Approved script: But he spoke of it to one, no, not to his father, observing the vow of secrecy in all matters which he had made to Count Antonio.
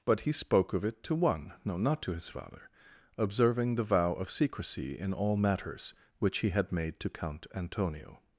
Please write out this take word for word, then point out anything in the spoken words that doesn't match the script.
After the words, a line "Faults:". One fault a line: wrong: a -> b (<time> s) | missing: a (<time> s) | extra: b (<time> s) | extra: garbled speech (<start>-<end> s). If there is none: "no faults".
But he spoke of it to one, no, not to his father, observing the vow of secrecy in all matters which he had made to Count Antonio.
Faults:
no faults